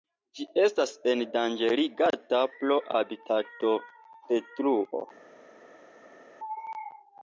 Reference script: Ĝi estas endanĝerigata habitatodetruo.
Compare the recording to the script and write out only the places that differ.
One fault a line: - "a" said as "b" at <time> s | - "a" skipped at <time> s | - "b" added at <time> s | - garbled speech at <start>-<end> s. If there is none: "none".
- "pro" added at 2.5 s